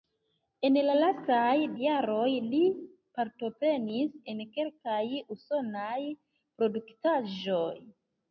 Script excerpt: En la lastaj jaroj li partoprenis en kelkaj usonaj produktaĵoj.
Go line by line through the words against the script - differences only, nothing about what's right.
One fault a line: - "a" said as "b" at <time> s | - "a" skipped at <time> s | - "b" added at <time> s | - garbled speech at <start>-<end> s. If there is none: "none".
none